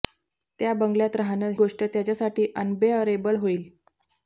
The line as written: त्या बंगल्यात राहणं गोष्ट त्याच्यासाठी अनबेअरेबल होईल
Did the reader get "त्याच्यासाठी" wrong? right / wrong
right